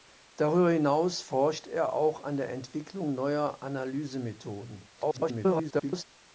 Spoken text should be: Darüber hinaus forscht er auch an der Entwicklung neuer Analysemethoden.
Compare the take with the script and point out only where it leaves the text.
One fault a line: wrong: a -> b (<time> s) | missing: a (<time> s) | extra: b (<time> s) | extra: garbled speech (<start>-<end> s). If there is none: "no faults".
extra: garbled speech (5.0-6.0 s)